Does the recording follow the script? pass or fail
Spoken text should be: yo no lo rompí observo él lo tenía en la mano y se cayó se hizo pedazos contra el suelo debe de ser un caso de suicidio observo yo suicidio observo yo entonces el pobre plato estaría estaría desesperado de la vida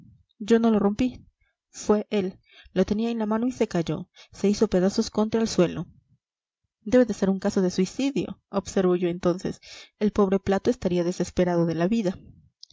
fail